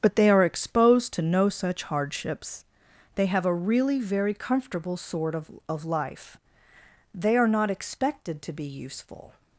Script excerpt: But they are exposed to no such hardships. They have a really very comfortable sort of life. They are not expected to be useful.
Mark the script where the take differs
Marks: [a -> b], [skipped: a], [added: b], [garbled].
But they are exposed to no such hardships. They have a really very comfortable sort of [added: of] life. They are not expected to be useful.